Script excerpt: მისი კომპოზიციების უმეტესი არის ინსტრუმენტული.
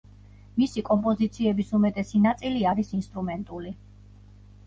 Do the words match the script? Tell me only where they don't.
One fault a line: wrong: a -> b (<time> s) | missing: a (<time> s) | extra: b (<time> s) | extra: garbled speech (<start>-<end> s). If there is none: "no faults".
extra: ნაწილი (2.2 s)